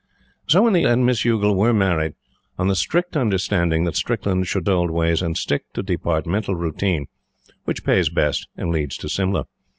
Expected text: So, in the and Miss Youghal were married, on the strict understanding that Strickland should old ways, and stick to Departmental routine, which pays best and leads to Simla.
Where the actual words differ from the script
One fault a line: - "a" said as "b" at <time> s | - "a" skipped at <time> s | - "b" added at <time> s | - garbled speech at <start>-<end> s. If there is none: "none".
none